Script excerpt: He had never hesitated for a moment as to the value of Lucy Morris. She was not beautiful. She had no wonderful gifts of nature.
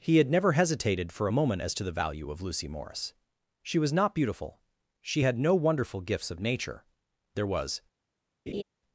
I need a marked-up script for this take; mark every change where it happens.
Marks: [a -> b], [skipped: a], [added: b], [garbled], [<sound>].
He had never hesitated for a moment as to the value of Lucy Morris. She was not beautiful. She had no wonderful gifts of nature. [added: There was] [laugh]